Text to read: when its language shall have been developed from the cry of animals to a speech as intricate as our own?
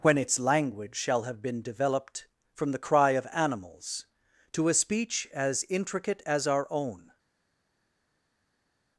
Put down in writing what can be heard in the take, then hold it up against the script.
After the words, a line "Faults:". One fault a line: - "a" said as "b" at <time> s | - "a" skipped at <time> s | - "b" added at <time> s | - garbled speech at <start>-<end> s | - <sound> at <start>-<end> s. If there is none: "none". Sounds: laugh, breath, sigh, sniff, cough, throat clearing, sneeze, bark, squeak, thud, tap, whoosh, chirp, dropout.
when its language shall have been developed from the cry of animals to a speech as intricate as our own?
Faults:
none